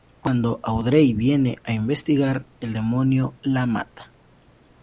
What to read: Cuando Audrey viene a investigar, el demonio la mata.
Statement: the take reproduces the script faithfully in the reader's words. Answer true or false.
true